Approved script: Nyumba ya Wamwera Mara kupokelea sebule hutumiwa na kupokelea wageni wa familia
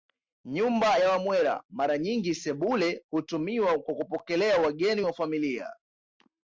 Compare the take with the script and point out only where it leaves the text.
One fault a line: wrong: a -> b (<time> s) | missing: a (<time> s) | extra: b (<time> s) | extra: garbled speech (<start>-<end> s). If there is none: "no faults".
wrong: kupokelea -> nyingi (2.0 s)
wrong: na -> kwa (3.8 s)